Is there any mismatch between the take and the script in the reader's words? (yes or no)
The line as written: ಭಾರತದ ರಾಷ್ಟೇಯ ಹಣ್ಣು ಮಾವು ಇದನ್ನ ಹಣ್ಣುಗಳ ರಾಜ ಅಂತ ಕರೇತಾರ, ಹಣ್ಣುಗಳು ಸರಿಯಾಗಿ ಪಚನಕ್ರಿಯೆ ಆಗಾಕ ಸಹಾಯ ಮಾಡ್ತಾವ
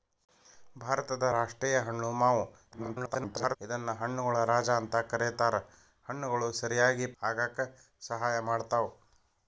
yes